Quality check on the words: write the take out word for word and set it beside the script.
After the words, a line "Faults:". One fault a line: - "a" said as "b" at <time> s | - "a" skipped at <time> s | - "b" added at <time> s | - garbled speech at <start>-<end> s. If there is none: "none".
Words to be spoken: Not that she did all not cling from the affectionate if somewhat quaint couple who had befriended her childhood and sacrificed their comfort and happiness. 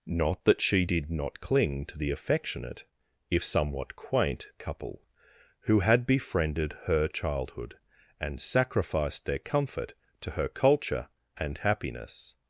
Not that she did not cling to the affectionate if somewhat quaint couple who had befriended her childhood and sacrificed their comfort to her culture and happiness.
Faults:
- "all" skipped at 1.1 s
- "from" said as "to" at 1.9 s
- "to her culture" added at 10.2 s